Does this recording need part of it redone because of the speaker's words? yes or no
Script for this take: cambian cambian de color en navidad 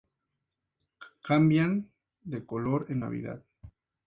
yes